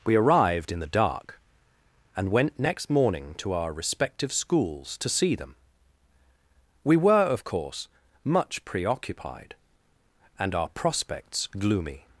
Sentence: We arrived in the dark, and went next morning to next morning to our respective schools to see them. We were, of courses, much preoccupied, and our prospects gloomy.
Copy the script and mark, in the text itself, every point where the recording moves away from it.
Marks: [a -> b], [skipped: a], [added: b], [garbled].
We arrived in the dark, and went next morning to [skipped: next morning to] our respective schools to see them. We were, of [courses, -> course] much preoccupied, and our prospects gloomy.